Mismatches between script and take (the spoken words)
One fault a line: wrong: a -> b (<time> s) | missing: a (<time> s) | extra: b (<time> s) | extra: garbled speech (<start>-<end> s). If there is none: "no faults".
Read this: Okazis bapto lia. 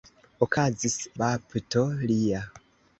no faults